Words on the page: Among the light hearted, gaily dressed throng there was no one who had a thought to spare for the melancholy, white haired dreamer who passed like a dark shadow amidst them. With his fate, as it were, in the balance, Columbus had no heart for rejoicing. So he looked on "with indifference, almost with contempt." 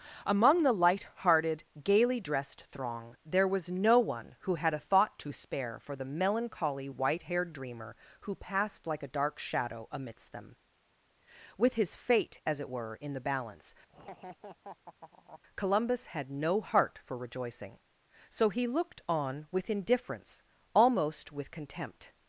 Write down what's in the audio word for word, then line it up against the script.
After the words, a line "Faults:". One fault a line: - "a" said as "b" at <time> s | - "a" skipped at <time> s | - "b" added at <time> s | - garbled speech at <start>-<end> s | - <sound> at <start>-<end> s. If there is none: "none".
Among the light hearted, gaily dressed throng there was no one who had a thought to spare for the melancholy, white haired dreamer who passed like a dark shadow amidst them. With his fate, as it were, in the balance, Columbus had no heart for rejoicing. So he looked on "with indifference, almost with contempt."
Faults:
- laugh at 13.9-15.4 s